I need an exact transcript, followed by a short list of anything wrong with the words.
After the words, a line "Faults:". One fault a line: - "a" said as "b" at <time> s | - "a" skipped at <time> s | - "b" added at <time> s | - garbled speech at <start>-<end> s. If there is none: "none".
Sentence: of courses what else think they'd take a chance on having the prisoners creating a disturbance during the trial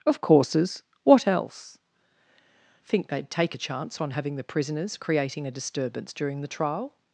of courses what else think they'd take a chance on having the prisoners creating a disturbance during the trial
Faults:
none